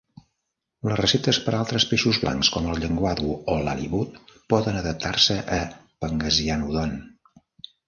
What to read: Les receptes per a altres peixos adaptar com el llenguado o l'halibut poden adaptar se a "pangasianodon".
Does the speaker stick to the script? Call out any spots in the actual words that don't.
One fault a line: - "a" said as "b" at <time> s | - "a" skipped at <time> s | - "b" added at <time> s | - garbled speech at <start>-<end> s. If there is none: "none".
- "adaptar" said as "blancs" at 2.2 s